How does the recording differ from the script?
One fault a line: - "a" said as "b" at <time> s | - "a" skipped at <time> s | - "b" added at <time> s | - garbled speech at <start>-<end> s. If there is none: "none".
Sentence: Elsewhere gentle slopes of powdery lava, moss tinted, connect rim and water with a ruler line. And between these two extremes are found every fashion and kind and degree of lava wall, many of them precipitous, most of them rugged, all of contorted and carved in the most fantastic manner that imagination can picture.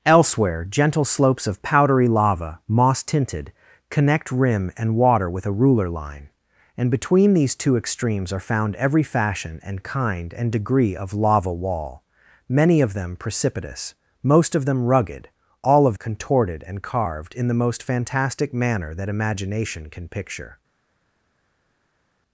none